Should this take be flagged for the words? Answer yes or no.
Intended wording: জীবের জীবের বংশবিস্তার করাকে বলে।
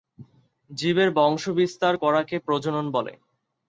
yes